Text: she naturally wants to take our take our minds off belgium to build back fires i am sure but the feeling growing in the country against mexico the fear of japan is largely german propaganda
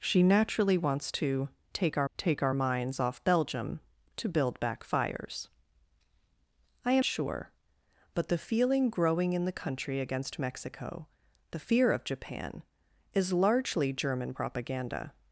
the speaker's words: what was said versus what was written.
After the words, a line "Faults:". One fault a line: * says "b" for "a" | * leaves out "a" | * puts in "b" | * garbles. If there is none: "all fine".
she naturally wants to take our take our minds off belgium to build back fires i am sure but the feeling growing in the country against mexico the fear of japan is largely german propaganda
Faults:
all fine